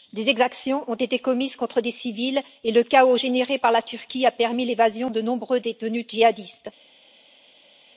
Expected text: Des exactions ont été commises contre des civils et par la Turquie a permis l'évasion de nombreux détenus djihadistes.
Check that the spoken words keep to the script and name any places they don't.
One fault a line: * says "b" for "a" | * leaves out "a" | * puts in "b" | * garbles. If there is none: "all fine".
* puts in "le chaos généré"